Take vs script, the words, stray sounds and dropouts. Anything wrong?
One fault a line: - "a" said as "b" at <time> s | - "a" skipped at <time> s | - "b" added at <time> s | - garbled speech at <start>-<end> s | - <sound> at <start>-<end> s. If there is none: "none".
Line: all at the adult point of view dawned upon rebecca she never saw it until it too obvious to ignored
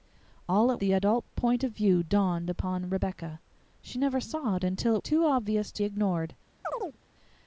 - chirp at 6.6-7.0 s